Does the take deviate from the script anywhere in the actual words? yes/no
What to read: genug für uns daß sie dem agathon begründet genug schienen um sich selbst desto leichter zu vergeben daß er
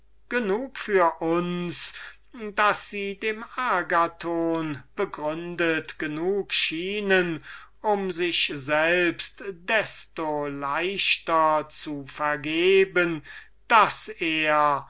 no